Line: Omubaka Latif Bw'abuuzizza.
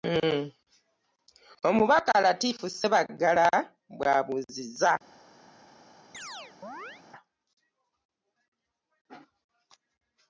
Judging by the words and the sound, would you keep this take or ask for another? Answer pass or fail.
fail